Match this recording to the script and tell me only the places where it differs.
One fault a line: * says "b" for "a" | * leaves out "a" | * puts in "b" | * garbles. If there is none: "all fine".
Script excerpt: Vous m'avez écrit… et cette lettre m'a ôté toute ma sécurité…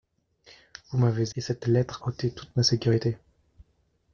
* leaves out "écrit"
* leaves out "m'a"